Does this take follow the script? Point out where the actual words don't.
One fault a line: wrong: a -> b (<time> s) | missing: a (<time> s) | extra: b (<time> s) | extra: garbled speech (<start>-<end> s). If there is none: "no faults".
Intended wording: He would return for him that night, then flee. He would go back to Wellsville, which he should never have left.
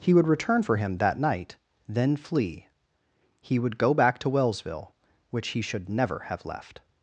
no faults